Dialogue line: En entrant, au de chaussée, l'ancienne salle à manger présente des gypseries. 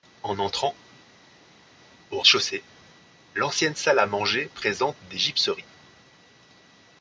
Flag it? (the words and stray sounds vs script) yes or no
no